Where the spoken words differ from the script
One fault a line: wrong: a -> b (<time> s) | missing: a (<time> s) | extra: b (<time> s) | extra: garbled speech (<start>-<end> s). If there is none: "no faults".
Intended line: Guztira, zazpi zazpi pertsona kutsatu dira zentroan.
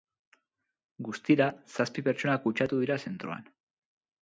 missing: zazpi (2.0 s)